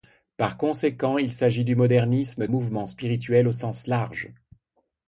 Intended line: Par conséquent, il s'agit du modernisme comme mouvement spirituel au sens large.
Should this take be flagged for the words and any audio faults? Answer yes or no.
yes